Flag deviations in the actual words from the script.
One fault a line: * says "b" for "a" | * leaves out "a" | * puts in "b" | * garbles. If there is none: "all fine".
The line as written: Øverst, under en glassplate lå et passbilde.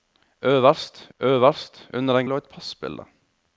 * puts in "øverst"
* leaves out "glassplate"